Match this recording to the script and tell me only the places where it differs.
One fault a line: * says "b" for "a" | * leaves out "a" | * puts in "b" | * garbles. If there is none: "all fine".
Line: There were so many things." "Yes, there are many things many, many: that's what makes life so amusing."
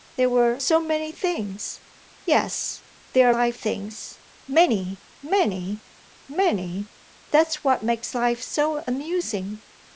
* says "life" for "many"
* puts in "many"